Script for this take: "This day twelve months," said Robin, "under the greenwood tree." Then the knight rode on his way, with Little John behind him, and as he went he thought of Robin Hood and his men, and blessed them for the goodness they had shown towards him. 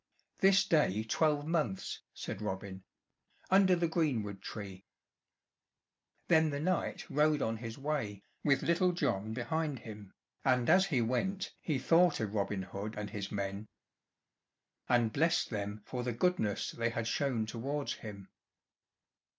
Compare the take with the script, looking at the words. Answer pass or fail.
pass